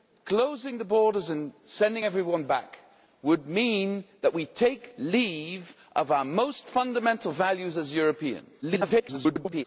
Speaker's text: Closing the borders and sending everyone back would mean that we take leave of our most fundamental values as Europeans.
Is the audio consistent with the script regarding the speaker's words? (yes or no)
no